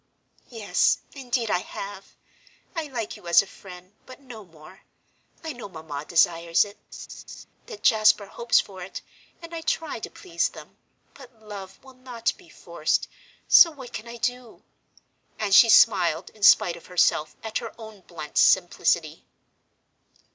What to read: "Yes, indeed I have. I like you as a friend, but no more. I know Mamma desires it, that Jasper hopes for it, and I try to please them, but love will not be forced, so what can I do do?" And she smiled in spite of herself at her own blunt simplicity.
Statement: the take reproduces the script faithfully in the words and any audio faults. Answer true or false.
false